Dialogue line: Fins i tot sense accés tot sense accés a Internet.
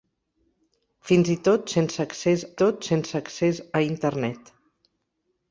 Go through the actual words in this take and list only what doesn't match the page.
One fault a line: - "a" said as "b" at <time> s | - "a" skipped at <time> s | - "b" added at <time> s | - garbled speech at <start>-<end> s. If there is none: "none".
none